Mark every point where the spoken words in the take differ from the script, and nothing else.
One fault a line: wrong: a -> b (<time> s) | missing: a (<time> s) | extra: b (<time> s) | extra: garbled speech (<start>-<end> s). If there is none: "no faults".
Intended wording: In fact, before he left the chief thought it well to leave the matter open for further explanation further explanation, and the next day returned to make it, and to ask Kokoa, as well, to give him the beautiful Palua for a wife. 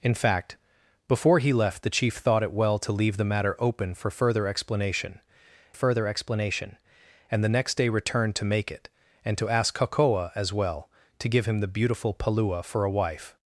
no faults